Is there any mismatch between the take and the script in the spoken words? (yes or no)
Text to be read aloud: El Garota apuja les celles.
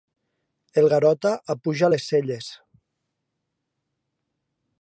no